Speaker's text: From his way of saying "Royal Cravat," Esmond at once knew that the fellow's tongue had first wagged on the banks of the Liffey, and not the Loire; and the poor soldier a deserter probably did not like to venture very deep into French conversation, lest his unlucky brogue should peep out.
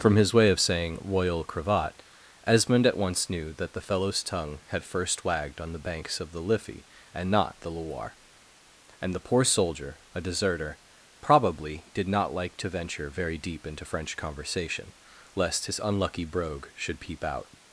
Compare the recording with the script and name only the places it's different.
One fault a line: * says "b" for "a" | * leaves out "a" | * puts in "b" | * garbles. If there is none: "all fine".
all fine